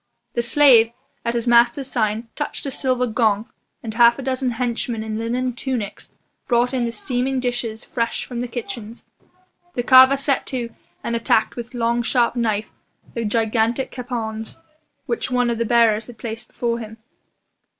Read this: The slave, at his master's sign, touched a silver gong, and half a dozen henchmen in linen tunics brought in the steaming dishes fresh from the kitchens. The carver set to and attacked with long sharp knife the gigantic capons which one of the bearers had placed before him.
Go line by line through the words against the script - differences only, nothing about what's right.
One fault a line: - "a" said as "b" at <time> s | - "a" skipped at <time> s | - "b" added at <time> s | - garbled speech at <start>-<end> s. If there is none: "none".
none